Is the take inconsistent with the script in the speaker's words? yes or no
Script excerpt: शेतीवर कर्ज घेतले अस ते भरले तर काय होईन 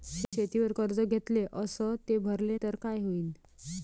no